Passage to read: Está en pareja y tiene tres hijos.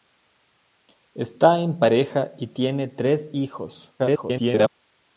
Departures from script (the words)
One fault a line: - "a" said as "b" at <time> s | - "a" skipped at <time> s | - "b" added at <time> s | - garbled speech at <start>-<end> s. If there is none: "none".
- garbled speech at 4.0-4.7 s